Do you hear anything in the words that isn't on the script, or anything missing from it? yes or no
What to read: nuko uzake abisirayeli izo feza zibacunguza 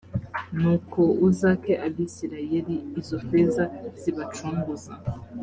no